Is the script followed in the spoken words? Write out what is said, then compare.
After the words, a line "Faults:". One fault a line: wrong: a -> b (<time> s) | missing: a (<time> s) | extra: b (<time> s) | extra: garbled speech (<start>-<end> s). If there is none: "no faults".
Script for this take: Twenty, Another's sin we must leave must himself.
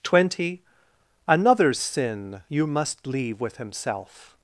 Twenty, Another's sin you must leave with himself.
Faults:
wrong: we -> you (2.5 s)
wrong: must -> with (3.4 s)